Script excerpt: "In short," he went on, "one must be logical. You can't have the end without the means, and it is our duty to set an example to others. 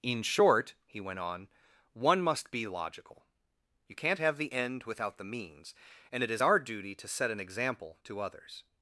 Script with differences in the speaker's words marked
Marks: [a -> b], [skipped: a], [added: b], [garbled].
"In short," he went on, "one must be logical. You can't have the end without the means, and it is our duty to set an example to others.